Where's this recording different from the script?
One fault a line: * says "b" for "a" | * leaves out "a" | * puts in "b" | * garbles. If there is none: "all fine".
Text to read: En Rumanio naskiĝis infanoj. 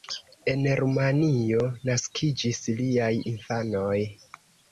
* puts in "liaj"